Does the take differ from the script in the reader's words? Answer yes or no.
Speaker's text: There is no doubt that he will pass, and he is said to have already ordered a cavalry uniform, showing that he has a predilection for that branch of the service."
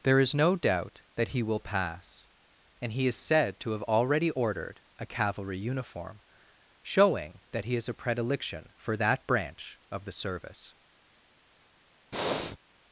no